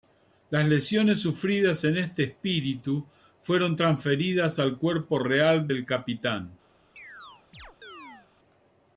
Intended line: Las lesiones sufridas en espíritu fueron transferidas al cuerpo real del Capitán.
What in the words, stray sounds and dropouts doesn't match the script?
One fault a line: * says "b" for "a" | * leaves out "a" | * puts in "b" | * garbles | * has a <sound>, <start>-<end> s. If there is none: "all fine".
* puts in "este"
* has a chirp, 7.0-8.3 s